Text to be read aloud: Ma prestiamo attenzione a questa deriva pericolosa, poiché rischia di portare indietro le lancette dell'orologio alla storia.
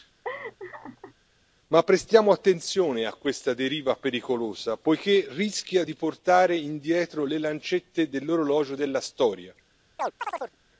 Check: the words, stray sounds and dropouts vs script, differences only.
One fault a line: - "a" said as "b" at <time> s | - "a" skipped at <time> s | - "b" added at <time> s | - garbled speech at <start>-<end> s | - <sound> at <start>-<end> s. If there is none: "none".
- laugh at 0.2-1.1 s
- "alla" said as "della" at 8.7 s
- chirp at 10.0-10.6 s